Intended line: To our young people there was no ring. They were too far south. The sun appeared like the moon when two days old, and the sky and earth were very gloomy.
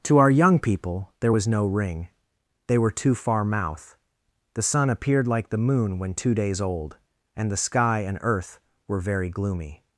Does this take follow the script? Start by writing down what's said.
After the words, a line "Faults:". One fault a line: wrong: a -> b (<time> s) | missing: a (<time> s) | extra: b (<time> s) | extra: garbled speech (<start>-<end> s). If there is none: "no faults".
To our young people there was no ring. They were too far mouth. The sun appeared like the moon when two days old, and the sky and earth were very gloomy.
Faults:
wrong: south -> mouth (3.4 s)